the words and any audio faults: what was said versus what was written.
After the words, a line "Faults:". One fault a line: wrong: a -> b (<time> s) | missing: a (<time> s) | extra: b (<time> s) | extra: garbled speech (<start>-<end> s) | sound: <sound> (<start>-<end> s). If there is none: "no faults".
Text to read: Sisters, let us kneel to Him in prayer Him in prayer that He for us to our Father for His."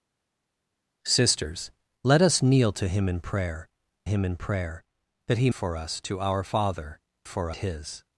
Sisters, let us kneel to Him in prayer Him in prayer that He for us to our Father for His."
Faults:
no faults